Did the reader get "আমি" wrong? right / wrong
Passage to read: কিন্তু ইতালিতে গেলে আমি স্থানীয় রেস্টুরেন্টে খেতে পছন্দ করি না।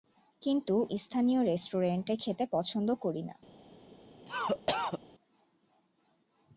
wrong